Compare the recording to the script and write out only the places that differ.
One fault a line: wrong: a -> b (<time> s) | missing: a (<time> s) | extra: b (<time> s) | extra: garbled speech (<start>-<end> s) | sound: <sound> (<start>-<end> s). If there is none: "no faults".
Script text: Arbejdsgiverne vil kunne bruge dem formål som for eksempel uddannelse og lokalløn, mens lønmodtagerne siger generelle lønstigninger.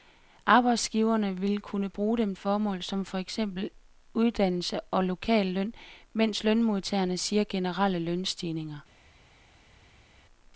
no faults